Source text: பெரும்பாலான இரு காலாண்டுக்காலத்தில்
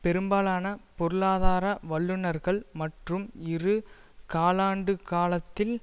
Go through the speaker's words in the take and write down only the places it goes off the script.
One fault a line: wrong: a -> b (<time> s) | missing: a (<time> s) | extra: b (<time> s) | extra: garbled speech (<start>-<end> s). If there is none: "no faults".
extra: பொருளாதார வல்லுனர்கள் மற்றும் (1.0 s)